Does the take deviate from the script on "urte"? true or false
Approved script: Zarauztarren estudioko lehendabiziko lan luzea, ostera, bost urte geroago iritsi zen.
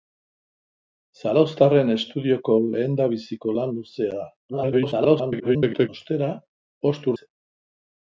true